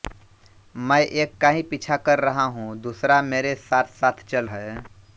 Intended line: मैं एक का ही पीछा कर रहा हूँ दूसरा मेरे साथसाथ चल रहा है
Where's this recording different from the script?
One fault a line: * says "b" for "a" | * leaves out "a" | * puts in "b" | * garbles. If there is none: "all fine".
* leaves out "रहा"